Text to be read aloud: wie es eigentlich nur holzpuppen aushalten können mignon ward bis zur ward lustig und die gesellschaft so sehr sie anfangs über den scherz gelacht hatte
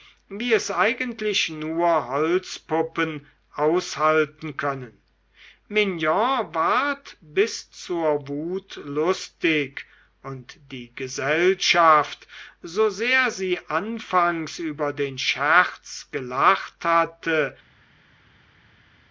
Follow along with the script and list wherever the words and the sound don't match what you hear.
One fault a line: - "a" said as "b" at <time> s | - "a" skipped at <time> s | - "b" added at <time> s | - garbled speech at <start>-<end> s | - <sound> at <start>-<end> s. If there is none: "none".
- "ward" said as "wut" at 8.3 s